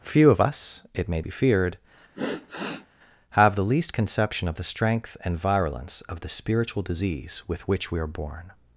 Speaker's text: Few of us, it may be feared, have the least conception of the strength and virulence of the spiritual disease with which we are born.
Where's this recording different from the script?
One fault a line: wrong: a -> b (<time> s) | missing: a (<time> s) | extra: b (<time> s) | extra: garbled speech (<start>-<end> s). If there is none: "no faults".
no faults